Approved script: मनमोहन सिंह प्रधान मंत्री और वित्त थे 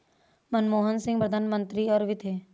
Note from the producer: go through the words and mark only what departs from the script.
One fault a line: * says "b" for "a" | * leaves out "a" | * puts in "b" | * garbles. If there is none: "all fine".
all fine